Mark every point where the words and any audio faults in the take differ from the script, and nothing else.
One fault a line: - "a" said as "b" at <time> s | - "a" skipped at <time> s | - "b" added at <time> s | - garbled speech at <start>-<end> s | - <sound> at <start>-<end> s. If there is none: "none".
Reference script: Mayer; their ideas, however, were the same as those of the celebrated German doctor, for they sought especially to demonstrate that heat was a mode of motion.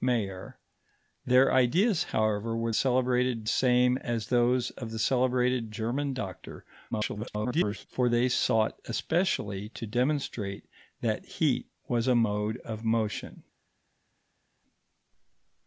- "the" said as "celebrated" at 2.7 s
- garbled speech at 6.9-7.9 s